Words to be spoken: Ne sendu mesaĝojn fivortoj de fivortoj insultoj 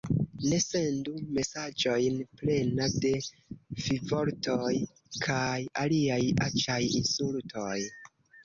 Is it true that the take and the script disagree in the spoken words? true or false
true